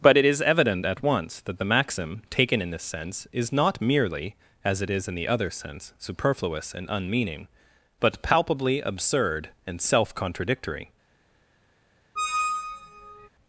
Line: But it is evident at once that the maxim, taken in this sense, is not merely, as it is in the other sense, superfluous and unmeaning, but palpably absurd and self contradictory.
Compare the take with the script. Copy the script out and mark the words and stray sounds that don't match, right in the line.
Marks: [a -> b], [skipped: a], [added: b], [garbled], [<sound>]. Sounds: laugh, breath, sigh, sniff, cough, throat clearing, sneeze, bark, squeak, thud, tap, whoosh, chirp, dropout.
But it is evident at once that the maxim, taken in this sense, is not merely, as it is in the other sense, superfluous and unmeaning, but palpably absurd and self contradictory. [squeak]